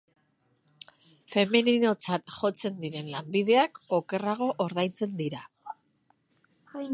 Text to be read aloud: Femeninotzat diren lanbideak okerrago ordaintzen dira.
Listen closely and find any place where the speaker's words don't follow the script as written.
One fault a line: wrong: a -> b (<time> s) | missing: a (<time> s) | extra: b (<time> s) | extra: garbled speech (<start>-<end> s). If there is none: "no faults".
extra: jotzen (2.4 s)